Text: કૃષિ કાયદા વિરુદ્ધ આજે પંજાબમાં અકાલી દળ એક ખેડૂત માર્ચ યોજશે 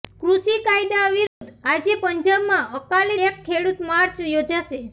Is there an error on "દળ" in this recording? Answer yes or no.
yes